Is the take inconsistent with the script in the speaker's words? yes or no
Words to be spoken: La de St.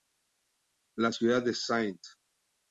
yes